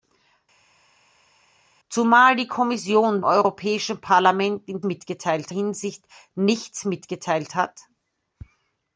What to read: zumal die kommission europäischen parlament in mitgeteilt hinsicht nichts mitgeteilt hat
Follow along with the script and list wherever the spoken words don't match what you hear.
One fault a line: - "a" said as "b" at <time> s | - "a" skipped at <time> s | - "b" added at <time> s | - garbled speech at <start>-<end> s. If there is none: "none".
none